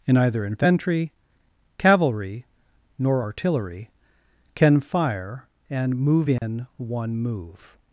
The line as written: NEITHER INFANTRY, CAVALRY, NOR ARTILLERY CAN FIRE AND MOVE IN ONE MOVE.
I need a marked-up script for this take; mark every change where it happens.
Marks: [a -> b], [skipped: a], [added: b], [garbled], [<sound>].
[NEITHER -> In either] INFANTRY, CAVALRY, NOR ARTILLERY CAN FIRE AND MOVE IN [dropout] ONE MOVE.